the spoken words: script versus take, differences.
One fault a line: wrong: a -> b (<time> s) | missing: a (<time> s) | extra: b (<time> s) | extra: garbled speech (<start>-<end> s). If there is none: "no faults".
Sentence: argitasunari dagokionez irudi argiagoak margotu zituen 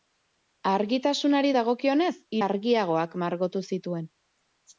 missing: irudi (2.1 s)